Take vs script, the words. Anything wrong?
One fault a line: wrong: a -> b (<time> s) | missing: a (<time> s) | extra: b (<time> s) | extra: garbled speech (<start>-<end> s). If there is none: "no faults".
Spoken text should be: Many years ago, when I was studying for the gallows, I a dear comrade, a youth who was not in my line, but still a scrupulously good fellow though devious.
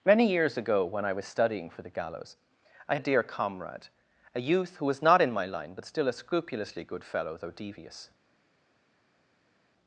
no faults